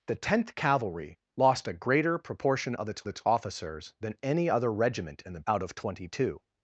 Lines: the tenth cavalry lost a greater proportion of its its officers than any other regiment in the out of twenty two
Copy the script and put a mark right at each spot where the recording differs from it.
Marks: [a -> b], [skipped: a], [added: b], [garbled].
the tenth cavalry lost a greater proportion of its its officers than any other regiment in the out of twenty two